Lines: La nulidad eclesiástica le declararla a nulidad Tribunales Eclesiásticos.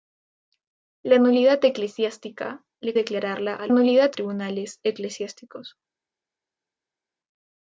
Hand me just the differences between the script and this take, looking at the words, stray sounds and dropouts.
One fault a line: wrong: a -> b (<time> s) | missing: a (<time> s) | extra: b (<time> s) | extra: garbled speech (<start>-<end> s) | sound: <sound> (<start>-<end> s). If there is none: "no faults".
no faults